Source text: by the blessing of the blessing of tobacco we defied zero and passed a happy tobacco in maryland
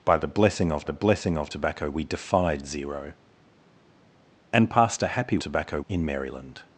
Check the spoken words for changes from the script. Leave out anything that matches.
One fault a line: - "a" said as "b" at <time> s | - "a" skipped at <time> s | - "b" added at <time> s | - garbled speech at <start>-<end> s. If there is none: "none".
none